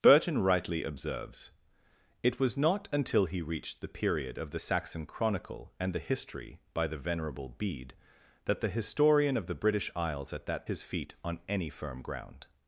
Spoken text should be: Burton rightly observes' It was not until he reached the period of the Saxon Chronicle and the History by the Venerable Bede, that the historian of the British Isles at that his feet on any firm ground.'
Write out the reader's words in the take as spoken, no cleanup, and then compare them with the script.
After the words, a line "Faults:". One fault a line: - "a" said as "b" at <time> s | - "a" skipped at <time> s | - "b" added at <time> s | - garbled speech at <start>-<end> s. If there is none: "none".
Burton rightly observes' It was not until he reached the period of the Saxon Chronicle and the History by the Venerable Bede, that the historian of the British Isles at that his feet on any firm ground.'
Faults:
none